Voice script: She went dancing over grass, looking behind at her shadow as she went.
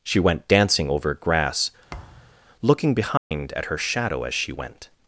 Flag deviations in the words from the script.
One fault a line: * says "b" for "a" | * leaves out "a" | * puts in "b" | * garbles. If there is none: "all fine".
all fine